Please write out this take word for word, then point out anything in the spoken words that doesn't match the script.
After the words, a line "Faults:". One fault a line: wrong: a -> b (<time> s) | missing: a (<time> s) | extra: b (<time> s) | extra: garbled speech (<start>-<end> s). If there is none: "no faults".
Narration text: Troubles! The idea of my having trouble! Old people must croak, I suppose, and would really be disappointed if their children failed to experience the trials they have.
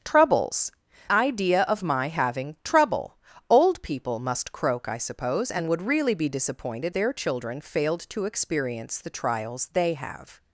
Troubles! Idea of my having trouble! Old people must croak, I suppose, and would really be disappointed their children failed to experience the trials they have.
Faults:
missing: The (0.7 s)
missing: if (7.0 s)